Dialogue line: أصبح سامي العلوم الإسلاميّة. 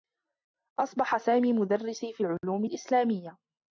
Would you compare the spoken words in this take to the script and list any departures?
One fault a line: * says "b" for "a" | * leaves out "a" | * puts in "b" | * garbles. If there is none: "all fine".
* puts in "مدرّسي في"